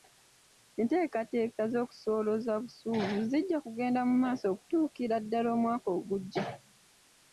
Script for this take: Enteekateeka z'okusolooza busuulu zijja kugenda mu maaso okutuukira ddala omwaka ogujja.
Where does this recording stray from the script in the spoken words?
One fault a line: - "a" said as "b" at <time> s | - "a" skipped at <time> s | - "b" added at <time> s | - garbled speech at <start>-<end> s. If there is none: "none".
none